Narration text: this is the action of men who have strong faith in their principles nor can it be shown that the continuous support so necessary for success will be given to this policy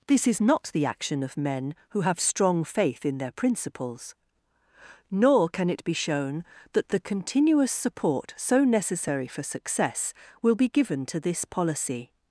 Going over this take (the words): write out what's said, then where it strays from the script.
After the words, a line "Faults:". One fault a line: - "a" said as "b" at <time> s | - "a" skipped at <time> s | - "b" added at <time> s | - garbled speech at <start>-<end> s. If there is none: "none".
this is not the action of men who have strong faith in their principles nor can it be shown that the continuous support so necessary for success will be given to this policy
Faults:
- "not" added at 0.4 s